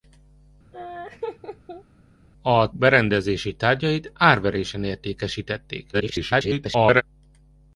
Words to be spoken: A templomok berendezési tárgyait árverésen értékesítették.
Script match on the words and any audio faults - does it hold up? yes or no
no